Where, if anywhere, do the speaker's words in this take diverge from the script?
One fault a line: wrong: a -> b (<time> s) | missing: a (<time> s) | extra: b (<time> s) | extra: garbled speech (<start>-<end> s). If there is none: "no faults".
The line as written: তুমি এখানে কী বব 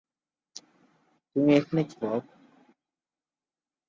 no faults